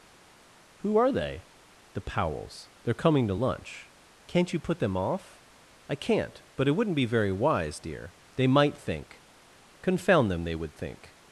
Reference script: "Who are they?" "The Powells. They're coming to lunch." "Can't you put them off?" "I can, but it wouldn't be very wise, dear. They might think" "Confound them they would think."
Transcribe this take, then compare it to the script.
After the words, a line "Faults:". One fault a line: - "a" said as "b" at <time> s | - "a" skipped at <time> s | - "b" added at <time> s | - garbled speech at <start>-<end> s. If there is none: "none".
"Who are they?" "The Powells. They're coming to lunch." "Can't you put them off?" "I can't, but it wouldn't be very wise, dear. They might think" "Confound them they would think."
Faults:
- "can" said as "can't" at 5.9 s